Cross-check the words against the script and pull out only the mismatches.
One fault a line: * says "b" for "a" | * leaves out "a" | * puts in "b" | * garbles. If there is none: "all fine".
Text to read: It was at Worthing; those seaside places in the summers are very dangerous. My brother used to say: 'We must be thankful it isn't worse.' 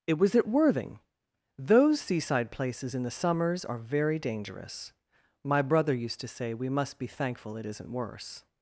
all fine